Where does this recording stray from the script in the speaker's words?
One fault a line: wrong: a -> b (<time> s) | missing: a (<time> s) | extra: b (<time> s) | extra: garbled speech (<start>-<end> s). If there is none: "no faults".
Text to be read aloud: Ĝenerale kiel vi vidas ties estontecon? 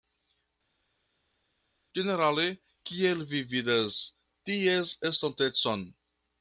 no faults